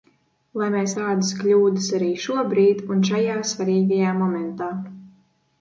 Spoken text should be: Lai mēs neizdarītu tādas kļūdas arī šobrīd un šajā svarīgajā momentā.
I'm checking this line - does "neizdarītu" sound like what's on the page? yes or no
no